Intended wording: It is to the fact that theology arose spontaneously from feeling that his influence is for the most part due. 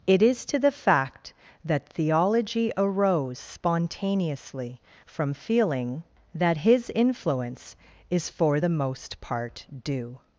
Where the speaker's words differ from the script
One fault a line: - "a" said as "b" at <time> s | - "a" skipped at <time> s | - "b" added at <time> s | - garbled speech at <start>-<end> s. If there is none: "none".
none